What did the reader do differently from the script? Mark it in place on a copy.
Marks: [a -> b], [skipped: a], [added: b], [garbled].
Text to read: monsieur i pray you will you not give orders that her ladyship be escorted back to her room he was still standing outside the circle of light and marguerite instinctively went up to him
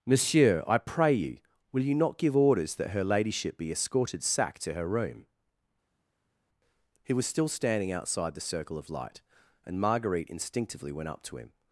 monsieur i pray you will you not give orders that her ladyship be escorted [back -> sack] to her room he was still standing outside the circle of light and marguerite instinctively went up to him